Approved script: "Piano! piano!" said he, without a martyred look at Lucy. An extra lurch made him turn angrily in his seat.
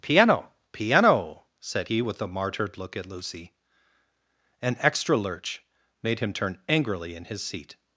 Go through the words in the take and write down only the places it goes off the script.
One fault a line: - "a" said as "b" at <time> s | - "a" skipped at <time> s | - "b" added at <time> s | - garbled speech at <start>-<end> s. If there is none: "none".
- "without" said as "with" at 2.0 s